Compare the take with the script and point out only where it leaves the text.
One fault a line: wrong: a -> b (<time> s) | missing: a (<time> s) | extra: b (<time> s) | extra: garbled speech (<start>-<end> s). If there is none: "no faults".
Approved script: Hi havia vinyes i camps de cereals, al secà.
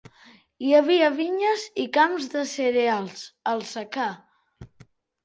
no faults